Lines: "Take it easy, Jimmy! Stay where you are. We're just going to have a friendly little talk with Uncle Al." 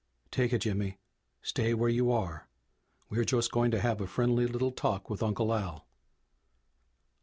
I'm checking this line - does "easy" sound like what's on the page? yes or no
no